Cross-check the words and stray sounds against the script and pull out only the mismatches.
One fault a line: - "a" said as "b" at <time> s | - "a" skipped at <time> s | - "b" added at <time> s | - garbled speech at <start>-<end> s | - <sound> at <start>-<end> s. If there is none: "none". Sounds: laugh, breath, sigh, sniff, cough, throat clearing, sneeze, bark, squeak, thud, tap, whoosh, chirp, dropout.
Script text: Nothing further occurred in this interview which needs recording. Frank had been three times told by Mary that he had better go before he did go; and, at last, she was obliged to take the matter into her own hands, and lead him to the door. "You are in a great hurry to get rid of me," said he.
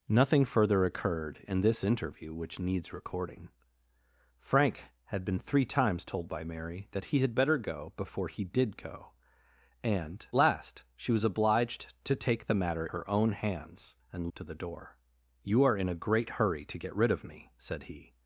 - "at" skipped at 10.3 s
- "into" skipped at 12.9 s
- "lead him" skipped at 14.3 s